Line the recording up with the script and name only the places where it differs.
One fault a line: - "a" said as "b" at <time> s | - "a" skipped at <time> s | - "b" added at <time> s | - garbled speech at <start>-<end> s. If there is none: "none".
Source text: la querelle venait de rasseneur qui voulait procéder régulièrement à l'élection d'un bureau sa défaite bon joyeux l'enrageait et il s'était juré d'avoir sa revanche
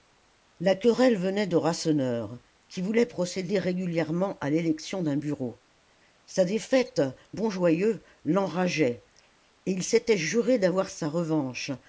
none